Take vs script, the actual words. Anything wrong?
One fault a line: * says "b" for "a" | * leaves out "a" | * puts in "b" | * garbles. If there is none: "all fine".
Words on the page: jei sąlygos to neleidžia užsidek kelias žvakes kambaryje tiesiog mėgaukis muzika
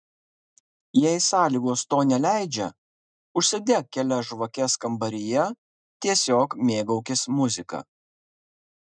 all fine